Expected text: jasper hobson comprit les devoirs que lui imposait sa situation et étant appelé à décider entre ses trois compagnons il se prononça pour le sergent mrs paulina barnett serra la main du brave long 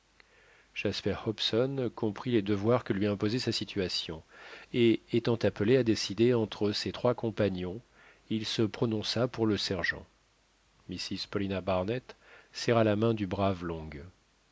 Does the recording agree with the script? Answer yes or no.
yes